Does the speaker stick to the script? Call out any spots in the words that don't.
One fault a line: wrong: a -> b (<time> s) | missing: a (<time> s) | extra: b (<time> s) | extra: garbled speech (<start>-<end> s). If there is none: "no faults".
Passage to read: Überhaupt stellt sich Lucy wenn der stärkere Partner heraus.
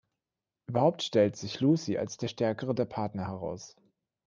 wrong: wenn -> als (2.0 s)
extra: der (2.7 s)